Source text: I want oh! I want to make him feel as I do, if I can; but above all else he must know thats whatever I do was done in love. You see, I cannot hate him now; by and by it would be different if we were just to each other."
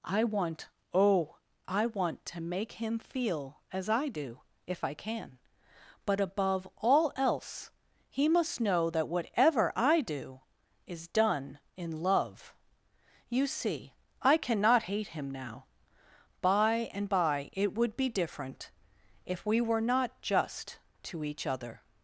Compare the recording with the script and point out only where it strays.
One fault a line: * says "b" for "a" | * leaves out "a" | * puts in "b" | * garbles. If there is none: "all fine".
* says "that" for "thats"
* says "is" for "was"
* puts in "not"